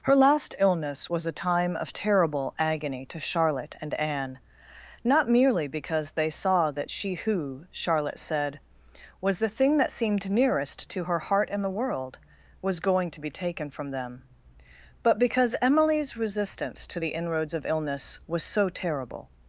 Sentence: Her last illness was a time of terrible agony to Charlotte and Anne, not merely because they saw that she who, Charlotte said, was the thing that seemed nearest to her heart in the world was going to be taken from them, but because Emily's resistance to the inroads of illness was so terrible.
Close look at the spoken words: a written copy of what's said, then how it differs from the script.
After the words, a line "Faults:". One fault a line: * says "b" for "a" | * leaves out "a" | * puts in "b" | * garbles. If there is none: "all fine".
Her last illness was a time of terrible agony to Charlotte and Anne, not merely because they saw that she who, Charlotte said, was the thing that seemed nearest to her heart in the world was going to be taken from them, but because Emily's resistance to the inroads of illness was so terrible.
Faults:
all fine